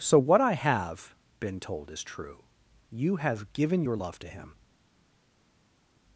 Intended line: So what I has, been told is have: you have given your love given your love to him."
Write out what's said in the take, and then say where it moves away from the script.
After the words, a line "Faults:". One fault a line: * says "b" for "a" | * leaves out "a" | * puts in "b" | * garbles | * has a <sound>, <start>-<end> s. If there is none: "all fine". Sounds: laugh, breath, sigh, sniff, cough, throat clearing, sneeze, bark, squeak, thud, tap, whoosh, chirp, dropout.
So what I have, been told is true: you have given your love to him."
Faults:
* says "have" for "has"
* says "true" for "have"
* leaves out "given your love"